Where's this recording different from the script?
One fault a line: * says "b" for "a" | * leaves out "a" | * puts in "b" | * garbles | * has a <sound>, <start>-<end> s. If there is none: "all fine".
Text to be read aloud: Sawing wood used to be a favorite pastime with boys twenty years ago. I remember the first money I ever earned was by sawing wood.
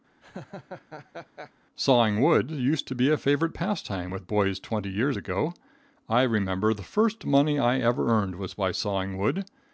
* has a laugh, 0.2-1.5 s